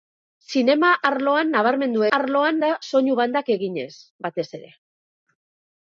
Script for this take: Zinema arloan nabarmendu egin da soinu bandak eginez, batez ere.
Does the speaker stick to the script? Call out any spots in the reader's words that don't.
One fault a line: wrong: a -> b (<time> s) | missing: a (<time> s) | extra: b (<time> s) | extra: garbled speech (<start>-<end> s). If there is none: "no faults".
wrong: egin -> arloan (2.2 s)